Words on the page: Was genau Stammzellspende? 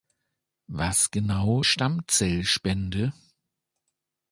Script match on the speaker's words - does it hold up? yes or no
yes